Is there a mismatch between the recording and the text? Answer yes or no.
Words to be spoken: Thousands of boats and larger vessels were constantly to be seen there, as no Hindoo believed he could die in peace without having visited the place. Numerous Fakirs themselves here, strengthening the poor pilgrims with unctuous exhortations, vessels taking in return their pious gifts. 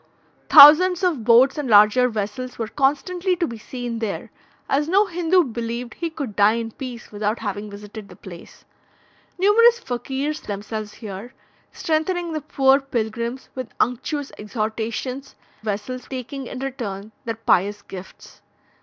no